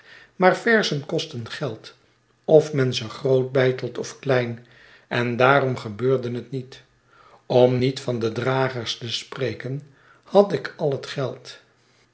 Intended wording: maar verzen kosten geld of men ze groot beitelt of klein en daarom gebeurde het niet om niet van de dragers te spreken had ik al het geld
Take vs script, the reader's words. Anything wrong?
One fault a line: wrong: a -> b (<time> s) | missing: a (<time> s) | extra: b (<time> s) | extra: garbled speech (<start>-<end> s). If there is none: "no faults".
no faults